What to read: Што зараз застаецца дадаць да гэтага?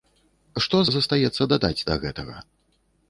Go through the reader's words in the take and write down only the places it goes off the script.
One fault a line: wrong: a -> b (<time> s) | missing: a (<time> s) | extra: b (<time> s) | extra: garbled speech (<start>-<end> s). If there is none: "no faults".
missing: зараз (0.8 s)